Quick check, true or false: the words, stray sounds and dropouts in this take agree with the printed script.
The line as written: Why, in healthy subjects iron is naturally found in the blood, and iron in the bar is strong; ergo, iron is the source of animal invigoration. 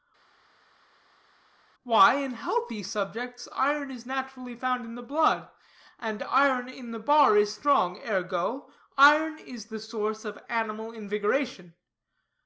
true